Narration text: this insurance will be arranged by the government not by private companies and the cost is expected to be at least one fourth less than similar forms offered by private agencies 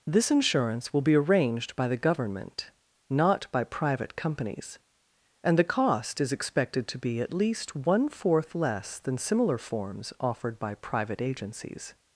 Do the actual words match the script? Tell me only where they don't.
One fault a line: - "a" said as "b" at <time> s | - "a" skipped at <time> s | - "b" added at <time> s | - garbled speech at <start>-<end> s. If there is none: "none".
none